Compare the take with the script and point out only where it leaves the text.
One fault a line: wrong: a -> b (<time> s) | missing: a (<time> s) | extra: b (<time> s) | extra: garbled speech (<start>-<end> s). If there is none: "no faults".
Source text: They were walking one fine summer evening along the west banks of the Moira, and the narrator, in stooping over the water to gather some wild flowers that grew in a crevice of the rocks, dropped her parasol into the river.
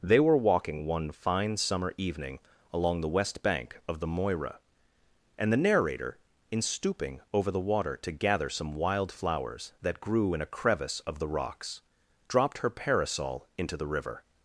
wrong: banks -> bank (3.4 s)